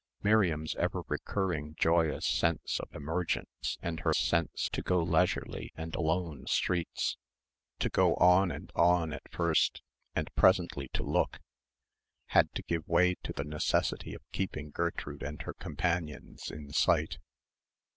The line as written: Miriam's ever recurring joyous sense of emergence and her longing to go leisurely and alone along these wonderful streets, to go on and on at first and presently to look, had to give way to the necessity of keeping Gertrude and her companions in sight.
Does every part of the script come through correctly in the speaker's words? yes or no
no